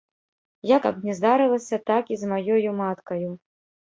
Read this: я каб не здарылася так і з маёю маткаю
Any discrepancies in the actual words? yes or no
no